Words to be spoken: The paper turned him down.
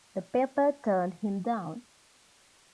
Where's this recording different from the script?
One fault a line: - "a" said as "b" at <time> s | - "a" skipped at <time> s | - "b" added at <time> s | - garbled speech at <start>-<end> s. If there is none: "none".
none